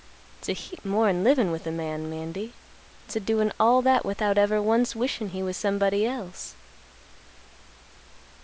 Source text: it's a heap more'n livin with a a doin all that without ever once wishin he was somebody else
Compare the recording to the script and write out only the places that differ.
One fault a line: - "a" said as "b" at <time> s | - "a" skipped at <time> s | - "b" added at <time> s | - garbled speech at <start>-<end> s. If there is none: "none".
- "man mandy it's" added at 1.7 s